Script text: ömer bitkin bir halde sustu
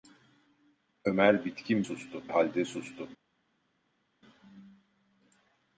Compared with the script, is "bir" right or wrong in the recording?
wrong